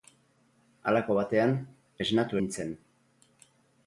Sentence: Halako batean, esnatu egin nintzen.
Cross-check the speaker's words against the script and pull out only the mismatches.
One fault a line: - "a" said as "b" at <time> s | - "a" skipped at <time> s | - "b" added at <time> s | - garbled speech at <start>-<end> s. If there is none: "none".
- "egin" skipped at 2.4 s